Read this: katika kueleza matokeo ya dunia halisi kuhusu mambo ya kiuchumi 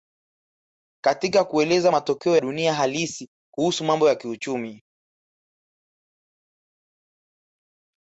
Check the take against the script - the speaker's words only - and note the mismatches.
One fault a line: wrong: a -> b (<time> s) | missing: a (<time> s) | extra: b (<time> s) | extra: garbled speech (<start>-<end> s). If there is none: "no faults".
missing: ya (2.4 s)